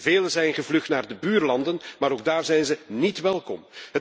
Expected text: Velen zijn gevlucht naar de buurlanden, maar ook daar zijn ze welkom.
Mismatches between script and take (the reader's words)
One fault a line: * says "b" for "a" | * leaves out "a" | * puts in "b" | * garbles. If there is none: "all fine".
* puts in "niet"